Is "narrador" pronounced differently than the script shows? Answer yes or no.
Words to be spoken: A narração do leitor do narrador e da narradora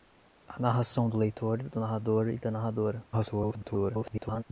no